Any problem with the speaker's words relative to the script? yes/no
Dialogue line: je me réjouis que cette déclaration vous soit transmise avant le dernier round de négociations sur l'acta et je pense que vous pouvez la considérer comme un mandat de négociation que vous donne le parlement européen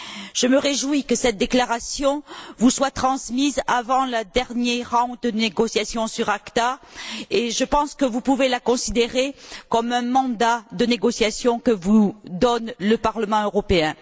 no